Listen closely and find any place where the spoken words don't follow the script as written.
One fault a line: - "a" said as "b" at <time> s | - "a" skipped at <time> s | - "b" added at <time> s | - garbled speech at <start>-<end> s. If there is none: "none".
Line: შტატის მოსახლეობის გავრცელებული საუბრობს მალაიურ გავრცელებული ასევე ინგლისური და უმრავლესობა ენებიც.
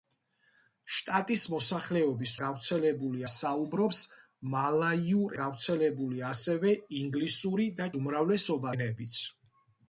none